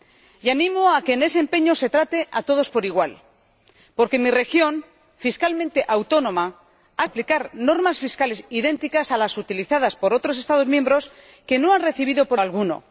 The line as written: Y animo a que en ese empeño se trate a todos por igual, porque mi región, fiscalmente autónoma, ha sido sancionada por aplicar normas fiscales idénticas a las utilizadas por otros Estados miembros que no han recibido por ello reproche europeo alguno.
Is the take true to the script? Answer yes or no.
no